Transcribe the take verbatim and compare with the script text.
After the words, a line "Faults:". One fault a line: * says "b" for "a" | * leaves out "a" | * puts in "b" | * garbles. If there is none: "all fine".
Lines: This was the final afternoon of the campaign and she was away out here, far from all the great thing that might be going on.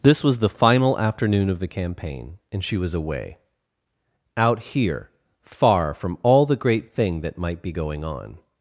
This was the final afternoon of the campaign and she was away out here, far from all the great thing that might be going on.
Faults:
all fine